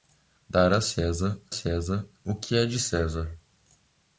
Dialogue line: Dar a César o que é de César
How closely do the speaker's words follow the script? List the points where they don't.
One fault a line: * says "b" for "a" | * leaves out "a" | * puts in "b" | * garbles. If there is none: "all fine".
* puts in "César"